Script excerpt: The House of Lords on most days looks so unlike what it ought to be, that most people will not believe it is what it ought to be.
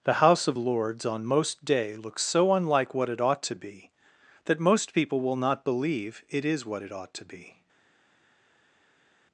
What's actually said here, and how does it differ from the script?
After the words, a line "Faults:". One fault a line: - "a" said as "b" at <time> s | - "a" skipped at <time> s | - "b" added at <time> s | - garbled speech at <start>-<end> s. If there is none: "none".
The House of Lords on most day looks so unlike what it ought to be, that most people will not believe it is what it ought to be.
Faults:
- "days" said as "day" at 1.6 s